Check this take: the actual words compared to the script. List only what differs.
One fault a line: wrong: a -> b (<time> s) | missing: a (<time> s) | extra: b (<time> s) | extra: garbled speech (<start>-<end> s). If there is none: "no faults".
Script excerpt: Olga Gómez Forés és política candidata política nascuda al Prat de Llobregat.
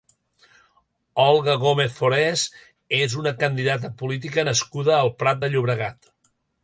wrong: política -> una (3.2 s)